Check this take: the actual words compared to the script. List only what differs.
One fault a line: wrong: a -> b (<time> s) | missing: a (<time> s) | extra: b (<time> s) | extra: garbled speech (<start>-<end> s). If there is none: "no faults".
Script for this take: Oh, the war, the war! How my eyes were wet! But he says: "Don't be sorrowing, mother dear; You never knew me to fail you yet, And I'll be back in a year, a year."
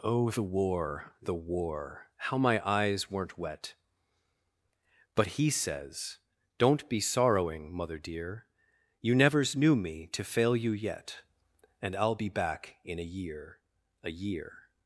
wrong: were -> weren't (3.1 s)
wrong: never -> nevers (9.1 s)